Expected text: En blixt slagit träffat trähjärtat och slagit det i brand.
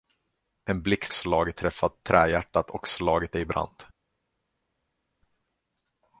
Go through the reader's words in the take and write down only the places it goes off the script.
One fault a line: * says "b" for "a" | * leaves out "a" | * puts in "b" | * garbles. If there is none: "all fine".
all fine